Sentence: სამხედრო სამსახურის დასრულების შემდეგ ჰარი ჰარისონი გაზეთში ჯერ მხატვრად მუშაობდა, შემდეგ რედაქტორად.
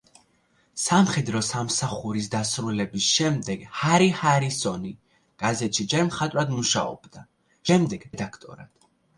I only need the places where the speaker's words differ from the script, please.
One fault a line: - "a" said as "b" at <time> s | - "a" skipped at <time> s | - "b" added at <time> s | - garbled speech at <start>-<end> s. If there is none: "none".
none